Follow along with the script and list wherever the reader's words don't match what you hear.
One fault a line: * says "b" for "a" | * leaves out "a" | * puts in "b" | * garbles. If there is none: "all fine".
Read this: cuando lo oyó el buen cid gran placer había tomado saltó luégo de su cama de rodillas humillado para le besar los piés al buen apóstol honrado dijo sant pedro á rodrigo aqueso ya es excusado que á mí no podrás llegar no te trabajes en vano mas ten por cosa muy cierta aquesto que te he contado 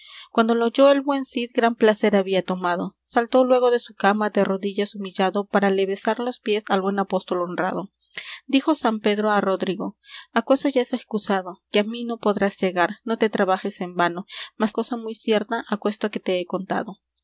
* leaves out "ten por"